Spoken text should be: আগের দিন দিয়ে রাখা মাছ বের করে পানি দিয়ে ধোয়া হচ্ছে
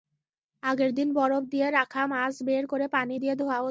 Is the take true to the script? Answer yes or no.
no